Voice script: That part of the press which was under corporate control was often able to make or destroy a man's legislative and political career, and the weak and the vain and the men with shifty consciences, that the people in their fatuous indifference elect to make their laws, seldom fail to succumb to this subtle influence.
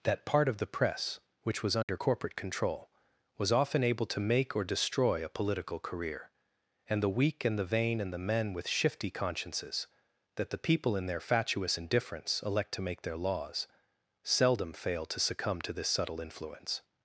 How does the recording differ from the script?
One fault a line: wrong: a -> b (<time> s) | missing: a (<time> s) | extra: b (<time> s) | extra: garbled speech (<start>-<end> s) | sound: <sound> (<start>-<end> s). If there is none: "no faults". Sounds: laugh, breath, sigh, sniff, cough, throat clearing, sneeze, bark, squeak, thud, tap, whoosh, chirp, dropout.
sound: dropout (1.8-1.9 s)
missing: man's legislative and (5.3 s)